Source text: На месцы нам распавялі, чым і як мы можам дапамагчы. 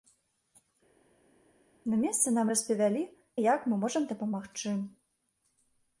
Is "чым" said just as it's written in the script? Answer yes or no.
no